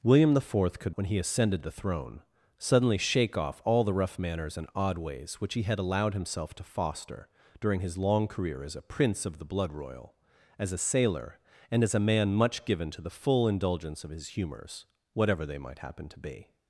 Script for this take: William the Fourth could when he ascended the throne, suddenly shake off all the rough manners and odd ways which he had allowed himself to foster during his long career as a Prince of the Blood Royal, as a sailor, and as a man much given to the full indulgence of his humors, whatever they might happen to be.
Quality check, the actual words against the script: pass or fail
pass